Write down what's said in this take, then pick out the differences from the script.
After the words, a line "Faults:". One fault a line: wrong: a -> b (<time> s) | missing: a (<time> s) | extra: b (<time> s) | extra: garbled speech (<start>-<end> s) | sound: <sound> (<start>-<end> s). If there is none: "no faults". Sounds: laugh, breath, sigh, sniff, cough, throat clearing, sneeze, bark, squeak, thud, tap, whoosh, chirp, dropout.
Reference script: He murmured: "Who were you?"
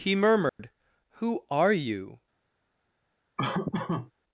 He murmured: "Who are you?"
Faults:
sound: dropout (0.5-0.6 s)
wrong: were -> are (1.5 s)
sound: laugh (3.4-4.1 s)